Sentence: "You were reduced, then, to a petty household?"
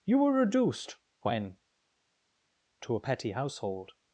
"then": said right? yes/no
no